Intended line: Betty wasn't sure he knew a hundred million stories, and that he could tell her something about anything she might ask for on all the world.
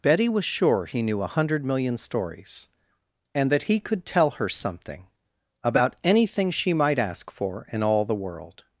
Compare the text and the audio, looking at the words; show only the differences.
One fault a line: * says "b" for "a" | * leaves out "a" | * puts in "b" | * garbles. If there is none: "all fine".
* says "was" for "wasn't"
* says "in" for "on"